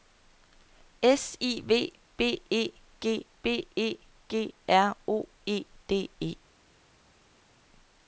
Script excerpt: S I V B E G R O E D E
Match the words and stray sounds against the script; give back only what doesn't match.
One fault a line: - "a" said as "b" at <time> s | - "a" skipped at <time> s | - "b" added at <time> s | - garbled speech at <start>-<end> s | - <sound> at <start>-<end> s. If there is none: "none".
- "B E G" added at 3.4 s